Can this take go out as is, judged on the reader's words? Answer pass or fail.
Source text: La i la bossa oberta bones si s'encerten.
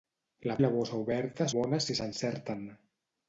pass